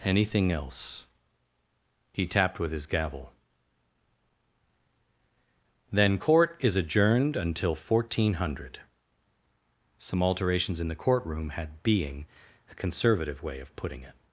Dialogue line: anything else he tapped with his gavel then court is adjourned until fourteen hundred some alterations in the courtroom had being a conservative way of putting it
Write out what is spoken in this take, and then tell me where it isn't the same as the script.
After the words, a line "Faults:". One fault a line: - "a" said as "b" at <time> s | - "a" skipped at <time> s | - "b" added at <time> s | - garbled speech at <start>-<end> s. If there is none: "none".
anything else he tapped with his gavel then court is adjourned until fourteen hundred some alterations in the courtroom had being a conservative way of putting it
Faults:
none